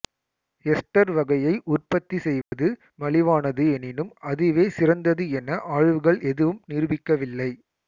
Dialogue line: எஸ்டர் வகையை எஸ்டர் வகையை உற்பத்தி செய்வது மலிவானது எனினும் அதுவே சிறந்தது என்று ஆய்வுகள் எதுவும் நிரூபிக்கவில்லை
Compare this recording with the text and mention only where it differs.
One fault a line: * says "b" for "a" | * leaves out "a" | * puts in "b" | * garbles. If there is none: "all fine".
* leaves out "எஸ்டர் வகையை"
* says "என" for "என்று"